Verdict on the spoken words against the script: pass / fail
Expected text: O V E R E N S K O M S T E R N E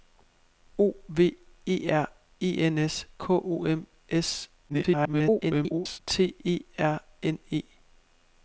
fail